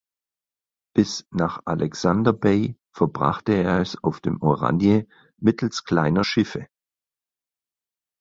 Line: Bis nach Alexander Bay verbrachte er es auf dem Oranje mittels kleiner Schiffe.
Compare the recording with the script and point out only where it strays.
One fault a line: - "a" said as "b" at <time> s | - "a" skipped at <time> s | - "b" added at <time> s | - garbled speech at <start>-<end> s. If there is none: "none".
none